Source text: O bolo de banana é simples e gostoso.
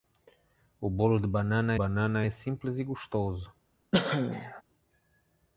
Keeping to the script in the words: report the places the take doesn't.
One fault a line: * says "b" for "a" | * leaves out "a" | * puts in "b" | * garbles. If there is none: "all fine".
* puts in "banana"